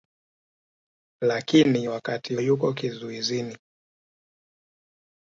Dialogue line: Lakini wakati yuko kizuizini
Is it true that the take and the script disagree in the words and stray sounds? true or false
false